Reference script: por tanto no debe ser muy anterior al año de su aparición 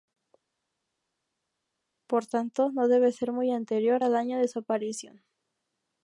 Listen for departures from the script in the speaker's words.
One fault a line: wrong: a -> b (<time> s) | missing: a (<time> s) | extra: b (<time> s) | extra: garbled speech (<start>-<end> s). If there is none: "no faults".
no faults